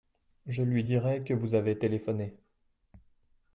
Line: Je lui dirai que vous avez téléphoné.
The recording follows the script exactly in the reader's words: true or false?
true